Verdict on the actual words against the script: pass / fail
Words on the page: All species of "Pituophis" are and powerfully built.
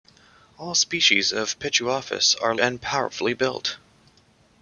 pass